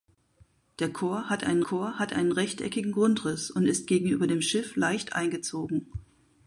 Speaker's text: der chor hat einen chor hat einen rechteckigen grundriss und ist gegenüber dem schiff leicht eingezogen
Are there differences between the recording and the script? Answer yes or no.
no